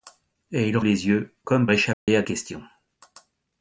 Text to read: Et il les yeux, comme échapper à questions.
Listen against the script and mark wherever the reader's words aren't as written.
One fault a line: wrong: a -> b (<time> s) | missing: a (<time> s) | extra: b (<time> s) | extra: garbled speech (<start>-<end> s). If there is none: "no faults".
no faults